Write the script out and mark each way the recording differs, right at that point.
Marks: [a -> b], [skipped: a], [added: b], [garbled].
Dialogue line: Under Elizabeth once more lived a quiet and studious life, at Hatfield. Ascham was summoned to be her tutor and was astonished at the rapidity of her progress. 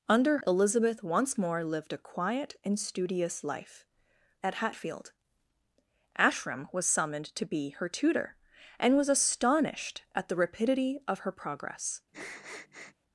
Under Elizabeth once more lived a quiet and studious life, at Hatfield. Ascham was summoned to be her tutor and was astonished at the rapidity of her progress.